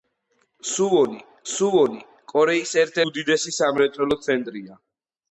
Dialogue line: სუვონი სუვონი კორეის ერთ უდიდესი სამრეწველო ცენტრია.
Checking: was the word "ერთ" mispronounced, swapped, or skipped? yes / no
no